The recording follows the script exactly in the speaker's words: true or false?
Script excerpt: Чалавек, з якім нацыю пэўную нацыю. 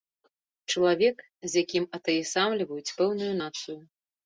false